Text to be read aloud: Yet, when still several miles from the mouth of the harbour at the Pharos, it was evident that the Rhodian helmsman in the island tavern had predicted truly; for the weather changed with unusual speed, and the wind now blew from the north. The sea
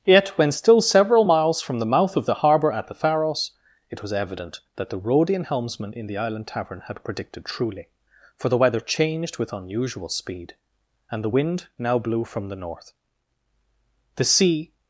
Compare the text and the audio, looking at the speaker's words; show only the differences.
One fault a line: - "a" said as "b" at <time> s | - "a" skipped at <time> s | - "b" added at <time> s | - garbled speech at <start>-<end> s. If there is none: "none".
none